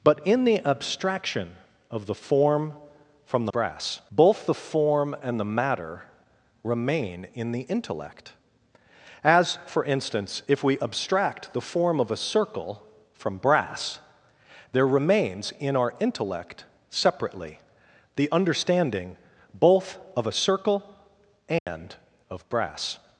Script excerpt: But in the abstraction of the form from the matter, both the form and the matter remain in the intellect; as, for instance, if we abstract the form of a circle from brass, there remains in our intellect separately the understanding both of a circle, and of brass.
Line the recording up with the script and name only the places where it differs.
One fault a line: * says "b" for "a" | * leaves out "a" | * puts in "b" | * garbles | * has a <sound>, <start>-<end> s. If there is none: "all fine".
* says "brass" for "matter"
* has a dropout, 21.6-21.7 s